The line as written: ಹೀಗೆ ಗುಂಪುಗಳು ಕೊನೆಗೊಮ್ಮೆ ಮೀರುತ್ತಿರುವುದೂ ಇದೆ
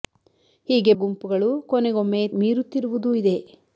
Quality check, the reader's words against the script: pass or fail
pass